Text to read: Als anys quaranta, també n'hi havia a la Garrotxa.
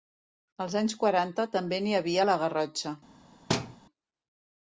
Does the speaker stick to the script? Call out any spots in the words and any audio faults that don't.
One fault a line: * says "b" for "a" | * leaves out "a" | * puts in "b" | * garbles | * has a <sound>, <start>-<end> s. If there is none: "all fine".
* has a thud, 3.5-3.8 s